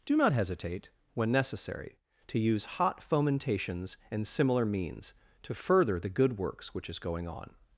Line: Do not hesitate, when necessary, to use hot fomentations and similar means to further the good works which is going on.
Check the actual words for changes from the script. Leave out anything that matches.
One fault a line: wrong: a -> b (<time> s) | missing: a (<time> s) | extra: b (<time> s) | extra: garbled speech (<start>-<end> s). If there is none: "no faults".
no faults